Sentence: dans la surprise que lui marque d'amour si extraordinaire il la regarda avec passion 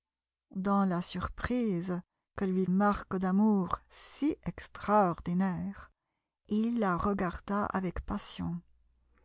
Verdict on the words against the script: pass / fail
pass